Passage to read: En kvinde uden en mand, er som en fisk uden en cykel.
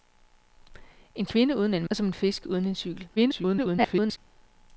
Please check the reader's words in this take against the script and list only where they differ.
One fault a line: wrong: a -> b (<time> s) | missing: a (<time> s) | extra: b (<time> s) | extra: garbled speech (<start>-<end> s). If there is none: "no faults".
missing: mand (1.9 s)
extra: garbled speech (3.2-4.2 s)